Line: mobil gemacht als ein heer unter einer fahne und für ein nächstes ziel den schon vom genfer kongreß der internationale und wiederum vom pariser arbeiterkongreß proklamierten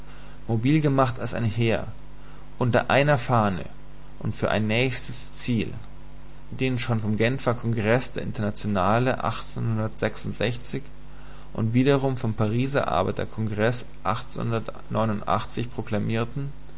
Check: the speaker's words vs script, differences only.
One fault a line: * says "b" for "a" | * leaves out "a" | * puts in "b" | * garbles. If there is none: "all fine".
all fine